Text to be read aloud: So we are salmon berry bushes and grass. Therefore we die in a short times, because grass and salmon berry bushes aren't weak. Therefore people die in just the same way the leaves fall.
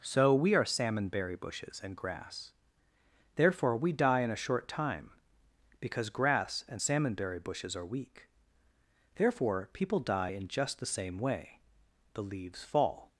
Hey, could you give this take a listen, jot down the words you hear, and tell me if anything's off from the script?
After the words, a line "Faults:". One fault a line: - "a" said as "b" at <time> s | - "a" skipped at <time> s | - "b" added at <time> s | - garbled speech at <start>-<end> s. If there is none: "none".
So we are salmon berry bushes and grass. Therefore we die in a short time, because grass and salmon berry bushes are weak. Therefore people die in just the same way the leaves fall.
Faults:
- "times" said as "time" at 4.7 s
- "aren't" said as "are" at 7.7 s